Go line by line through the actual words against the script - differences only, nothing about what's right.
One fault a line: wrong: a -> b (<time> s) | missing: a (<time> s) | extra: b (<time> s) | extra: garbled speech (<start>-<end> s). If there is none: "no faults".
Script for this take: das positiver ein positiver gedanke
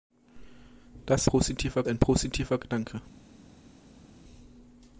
no faults